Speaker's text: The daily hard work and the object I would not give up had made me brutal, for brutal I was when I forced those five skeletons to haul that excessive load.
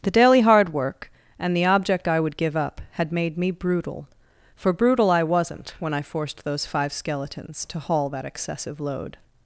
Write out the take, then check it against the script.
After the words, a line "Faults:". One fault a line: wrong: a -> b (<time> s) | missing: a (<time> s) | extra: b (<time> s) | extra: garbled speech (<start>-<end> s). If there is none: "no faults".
The daily hard work and the object I would give up had made me brutal, for brutal I wasn't when I forced those five skeletons to haul that excessive load.
Faults:
missing: not (2.4 s)
wrong: was -> wasn't (5.2 s)